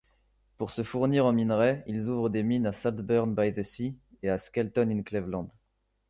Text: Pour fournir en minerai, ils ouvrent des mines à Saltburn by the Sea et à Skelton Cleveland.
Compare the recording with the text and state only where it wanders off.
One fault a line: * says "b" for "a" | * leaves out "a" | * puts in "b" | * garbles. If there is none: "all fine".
* puts in "se"
* puts in "in"